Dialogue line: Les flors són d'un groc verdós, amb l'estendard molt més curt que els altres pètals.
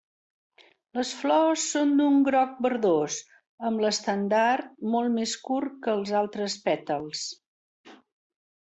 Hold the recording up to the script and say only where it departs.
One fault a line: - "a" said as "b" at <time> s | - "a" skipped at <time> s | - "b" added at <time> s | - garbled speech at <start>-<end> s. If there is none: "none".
none